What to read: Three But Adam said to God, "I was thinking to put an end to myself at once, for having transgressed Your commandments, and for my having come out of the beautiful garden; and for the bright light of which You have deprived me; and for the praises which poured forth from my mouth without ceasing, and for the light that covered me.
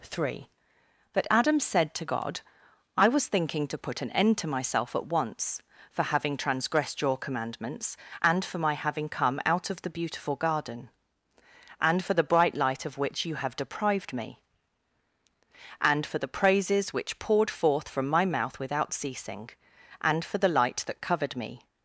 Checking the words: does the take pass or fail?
pass